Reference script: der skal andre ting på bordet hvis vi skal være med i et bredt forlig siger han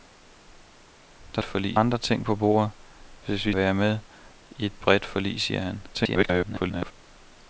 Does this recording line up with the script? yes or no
no